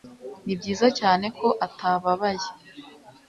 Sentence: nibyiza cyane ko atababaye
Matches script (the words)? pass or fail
pass